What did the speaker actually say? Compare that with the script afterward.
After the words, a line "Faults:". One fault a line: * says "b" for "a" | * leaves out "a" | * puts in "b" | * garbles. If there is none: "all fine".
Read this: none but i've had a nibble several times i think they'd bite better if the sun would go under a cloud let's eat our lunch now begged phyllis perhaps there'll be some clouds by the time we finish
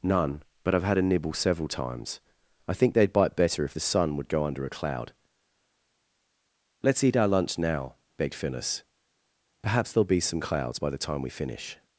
none but i've had a nibble several times i think they'd bite better if the sun would go under a cloud let's eat our lunch now begged phyllis perhaps there'll be some clouds by the time we finish
Faults:
all fine